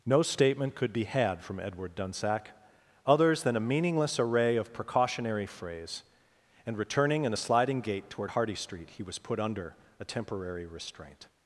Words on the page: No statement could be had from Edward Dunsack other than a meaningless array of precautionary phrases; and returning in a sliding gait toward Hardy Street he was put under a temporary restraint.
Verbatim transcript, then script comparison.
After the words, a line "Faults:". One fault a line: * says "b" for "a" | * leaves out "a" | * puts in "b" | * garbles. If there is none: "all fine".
No statement could be had from Edward Dunsack others than a meaningless array of precautionary phrase; and returning in a sliding gait toward Hardy Street he was put under a temporary restraint.
Faults:
* says "others" for "other"
* says "phrase" for "phrases"